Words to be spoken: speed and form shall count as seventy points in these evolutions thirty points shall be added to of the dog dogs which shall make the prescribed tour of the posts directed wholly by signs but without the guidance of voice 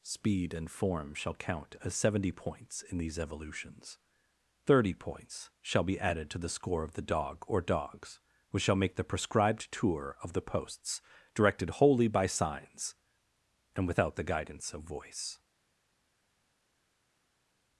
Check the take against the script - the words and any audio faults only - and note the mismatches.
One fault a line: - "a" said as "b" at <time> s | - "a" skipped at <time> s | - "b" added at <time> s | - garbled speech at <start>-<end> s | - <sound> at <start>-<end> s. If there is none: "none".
- "the score" added at 6.4 s
- "or" added at 7.5 s
- "but" said as "and" at 13.8 s